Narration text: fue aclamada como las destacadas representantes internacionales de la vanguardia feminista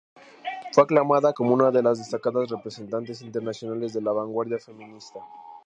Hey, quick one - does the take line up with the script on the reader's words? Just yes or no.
no